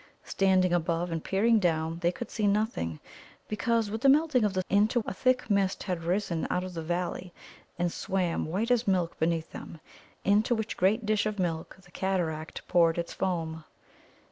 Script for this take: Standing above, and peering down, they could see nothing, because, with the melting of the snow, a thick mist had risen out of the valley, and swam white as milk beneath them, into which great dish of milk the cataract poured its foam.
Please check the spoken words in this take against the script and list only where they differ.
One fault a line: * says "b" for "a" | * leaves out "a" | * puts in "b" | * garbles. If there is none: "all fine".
* says "into" for "snow"